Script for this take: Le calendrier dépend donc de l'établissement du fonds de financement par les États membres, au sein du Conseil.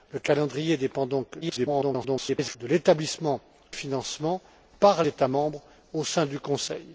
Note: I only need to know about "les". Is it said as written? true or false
false